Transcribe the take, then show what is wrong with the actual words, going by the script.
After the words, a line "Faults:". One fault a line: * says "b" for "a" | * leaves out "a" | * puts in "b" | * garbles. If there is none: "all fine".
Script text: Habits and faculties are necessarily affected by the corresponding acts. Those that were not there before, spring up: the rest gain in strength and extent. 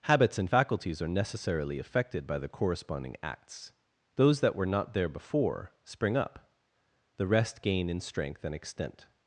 Habits and faculties are necessarily affected by the corresponding acts. Those that were not there before, spring up: the rest gain in strength and extent.
Faults:
all fine